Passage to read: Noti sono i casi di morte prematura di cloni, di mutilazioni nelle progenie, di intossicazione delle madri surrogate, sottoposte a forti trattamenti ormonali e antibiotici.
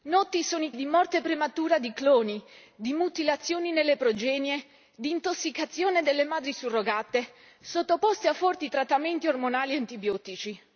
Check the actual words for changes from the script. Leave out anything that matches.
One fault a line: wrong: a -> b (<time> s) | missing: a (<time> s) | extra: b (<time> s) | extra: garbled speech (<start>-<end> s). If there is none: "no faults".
missing: casi (0.7 s)